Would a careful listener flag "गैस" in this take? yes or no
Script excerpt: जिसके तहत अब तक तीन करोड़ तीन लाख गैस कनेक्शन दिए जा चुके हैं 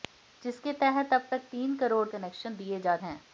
yes